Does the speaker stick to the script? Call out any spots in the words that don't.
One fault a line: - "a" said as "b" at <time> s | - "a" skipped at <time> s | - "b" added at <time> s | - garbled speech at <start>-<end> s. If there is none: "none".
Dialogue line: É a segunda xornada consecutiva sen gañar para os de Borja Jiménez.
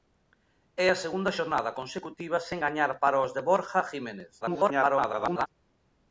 - garbled speech at 4.4-5.5 s